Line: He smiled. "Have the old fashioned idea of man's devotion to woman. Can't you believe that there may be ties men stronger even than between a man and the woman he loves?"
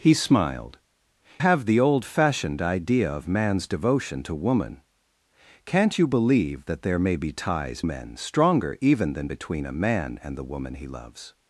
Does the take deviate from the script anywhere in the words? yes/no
no